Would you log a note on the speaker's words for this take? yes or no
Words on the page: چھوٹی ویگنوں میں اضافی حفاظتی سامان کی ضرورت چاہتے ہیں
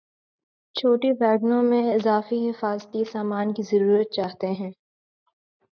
no